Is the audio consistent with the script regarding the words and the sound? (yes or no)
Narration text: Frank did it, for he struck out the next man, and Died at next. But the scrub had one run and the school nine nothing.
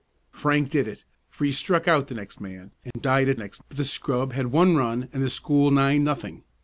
no